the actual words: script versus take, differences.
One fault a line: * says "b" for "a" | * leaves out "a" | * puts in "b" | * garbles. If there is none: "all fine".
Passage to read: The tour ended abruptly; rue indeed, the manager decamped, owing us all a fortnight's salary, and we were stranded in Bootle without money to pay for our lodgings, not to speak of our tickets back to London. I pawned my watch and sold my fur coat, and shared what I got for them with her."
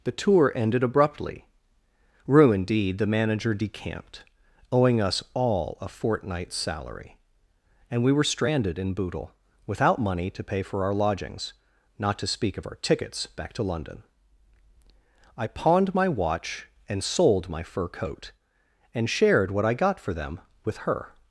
all fine